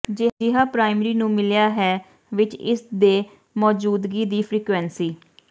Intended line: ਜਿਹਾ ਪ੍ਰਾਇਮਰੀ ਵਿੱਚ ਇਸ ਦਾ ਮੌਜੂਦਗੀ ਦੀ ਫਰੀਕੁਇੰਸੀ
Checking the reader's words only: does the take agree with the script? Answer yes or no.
no